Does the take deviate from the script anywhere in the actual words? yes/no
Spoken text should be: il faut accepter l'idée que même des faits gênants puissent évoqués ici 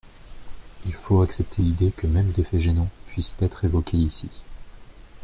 yes